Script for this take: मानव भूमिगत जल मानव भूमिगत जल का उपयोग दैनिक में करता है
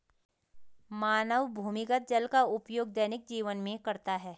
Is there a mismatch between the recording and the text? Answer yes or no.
yes